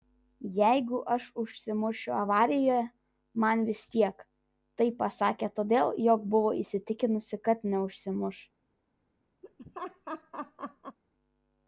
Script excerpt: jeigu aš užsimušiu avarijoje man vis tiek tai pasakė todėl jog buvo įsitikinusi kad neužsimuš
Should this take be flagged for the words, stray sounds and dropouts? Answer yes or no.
yes